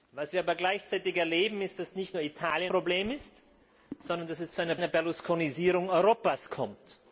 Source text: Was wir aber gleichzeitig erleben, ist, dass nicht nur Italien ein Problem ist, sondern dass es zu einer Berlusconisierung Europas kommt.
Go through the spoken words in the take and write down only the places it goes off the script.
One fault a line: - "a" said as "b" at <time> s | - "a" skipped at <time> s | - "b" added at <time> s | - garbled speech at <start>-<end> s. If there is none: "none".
- "ein" skipped at 2.7 s
- "einer" added at 4.7 s